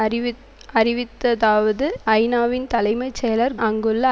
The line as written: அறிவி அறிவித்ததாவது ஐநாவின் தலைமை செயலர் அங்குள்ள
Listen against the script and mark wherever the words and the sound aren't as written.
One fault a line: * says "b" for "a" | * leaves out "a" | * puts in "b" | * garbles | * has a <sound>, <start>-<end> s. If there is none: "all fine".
all fine